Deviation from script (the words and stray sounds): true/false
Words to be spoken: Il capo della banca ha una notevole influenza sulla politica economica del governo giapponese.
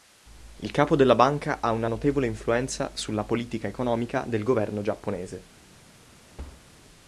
true